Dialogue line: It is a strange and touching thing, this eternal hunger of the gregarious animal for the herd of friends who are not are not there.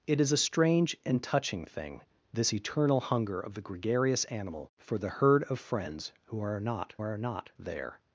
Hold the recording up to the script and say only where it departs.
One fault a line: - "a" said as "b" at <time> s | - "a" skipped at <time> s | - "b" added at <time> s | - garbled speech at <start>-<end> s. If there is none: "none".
none